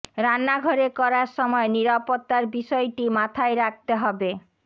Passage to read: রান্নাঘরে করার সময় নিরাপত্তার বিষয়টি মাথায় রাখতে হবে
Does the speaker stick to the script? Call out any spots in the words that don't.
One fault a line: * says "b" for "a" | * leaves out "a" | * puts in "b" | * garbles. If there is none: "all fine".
all fine